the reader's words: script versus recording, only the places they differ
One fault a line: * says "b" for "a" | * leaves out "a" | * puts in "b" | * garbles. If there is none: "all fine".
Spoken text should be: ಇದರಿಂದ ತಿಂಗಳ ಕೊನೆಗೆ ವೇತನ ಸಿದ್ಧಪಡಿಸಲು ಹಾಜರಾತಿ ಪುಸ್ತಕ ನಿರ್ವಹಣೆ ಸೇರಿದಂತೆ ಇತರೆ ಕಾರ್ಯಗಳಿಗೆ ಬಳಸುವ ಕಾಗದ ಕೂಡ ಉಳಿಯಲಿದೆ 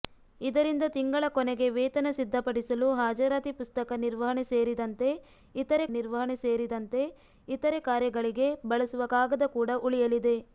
* puts in "ನಿರ್ವಹಣೆ ಸೇರಿದಂತೆ ಇತರೆ"